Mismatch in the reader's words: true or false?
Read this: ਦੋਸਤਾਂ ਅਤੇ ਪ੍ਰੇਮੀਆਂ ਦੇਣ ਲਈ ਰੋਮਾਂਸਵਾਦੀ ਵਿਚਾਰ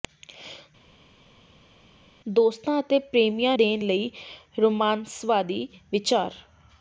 false